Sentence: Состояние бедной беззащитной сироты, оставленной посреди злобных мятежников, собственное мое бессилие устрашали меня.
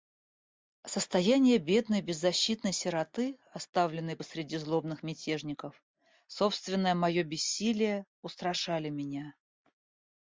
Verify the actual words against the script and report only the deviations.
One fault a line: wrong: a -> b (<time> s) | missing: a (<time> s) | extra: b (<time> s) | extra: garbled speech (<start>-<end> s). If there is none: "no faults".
no faults